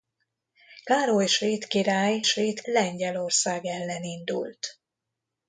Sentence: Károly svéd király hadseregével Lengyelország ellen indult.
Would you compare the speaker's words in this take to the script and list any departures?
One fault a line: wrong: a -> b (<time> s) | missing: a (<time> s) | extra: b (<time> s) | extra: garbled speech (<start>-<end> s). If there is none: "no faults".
wrong: hadseregével -> svéd (2.2 s)